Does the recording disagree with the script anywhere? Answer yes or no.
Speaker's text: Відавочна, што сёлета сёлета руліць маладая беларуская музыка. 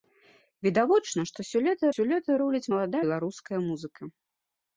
no